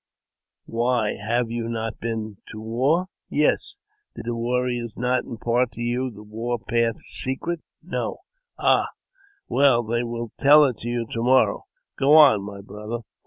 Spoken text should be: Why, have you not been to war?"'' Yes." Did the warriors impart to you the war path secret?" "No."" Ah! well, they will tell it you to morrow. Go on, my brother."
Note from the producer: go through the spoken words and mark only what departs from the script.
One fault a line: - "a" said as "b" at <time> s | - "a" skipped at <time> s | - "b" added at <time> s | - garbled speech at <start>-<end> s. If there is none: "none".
- "not" added at 5.0 s